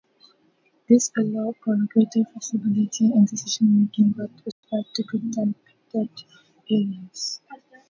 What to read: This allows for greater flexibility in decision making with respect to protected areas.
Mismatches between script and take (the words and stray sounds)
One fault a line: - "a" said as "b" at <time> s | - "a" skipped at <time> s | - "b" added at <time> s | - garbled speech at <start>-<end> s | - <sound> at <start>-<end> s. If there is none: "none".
- dropout at 4.5-4.6 s